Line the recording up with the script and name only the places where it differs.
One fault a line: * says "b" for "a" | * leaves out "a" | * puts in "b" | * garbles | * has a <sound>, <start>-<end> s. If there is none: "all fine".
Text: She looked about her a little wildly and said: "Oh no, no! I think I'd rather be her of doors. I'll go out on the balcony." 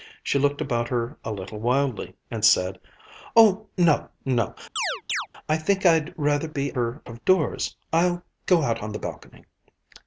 * has a chirp, 4.8-5.3 s